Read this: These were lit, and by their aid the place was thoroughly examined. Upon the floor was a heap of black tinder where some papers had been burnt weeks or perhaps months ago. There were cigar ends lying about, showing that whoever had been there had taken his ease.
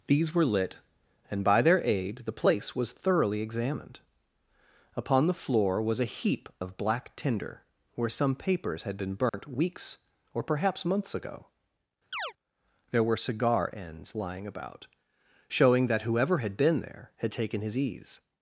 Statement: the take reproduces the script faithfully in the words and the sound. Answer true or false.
false